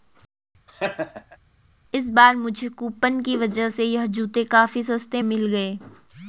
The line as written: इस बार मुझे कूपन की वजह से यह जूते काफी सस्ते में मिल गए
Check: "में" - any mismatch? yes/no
yes